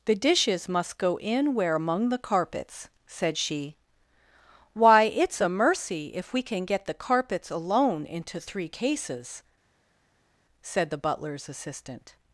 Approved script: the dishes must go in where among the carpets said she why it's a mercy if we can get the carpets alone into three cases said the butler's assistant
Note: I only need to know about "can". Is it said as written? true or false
true